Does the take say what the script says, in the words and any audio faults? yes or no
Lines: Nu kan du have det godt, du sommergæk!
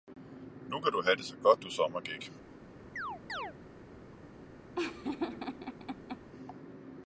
no